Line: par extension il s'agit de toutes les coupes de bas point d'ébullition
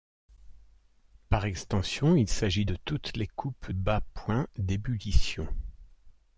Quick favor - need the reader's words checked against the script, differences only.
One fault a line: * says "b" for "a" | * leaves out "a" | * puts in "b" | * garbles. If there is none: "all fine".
* leaves out "de"